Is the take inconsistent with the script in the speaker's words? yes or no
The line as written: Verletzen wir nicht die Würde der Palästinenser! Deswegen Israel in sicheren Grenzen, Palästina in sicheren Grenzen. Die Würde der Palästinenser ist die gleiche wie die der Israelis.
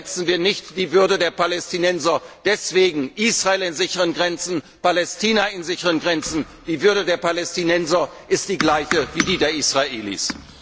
no